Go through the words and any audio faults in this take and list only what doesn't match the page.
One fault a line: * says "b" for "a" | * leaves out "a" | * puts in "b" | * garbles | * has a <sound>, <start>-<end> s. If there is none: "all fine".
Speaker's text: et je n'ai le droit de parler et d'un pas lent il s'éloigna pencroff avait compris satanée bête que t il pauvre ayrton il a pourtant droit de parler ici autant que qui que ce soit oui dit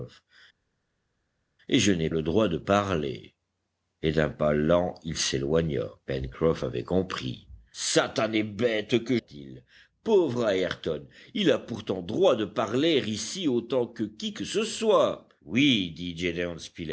all fine